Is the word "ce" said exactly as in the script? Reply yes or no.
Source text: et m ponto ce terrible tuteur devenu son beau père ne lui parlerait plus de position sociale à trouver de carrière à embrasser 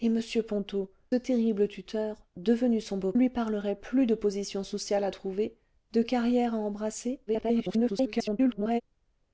no